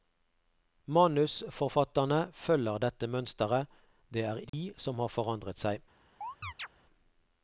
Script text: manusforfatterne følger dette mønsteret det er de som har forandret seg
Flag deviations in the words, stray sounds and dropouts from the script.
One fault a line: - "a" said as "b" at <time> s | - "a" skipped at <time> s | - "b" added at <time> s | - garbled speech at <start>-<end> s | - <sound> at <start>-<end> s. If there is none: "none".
- dropout at 4.5-4.5 s
- chirp at 6.2-6.7 s